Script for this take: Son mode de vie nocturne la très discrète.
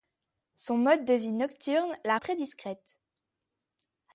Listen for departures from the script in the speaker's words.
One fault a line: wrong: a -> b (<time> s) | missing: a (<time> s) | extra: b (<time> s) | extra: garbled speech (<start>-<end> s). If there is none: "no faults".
no faults